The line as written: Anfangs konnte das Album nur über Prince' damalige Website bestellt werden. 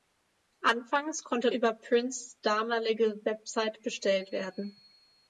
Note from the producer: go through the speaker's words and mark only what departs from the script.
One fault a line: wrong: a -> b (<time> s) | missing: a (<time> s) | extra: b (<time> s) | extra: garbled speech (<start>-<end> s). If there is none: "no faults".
missing: das Album nur (1.5 s)